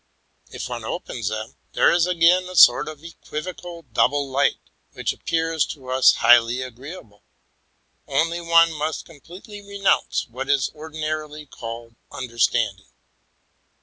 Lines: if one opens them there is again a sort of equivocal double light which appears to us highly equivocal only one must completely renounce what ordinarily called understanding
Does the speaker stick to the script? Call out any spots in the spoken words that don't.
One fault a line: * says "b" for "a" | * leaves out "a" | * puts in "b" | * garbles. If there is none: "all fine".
* says "agreeable" for "equivocal"
* puts in "is"